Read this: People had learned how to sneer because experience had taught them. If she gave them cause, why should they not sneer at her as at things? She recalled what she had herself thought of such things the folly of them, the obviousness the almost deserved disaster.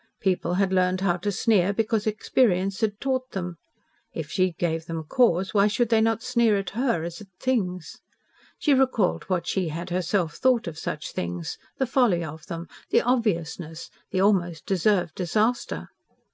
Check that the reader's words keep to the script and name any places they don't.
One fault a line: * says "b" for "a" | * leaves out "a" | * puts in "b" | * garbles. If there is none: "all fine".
all fine